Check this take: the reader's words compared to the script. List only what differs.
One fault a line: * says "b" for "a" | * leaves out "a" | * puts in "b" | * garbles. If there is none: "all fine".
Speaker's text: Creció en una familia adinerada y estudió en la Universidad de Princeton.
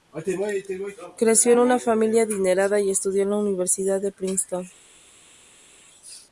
all fine